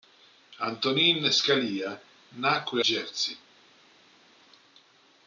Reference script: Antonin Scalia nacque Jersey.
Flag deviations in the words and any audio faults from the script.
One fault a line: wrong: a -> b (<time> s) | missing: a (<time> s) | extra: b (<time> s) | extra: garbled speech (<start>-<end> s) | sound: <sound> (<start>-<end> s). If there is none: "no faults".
no faults